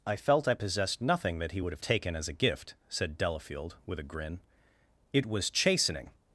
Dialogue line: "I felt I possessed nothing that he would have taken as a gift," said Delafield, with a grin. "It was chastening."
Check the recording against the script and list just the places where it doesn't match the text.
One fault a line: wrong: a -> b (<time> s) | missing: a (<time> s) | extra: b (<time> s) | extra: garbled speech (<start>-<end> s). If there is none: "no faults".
no faults